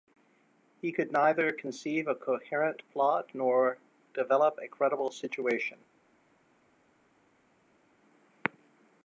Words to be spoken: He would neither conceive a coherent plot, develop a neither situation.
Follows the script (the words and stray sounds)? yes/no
no